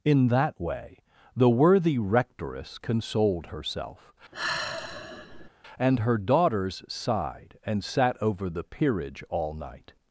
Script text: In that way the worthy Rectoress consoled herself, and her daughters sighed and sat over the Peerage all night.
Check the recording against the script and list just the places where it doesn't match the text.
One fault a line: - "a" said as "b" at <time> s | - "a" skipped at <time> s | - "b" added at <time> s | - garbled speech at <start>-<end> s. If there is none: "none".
none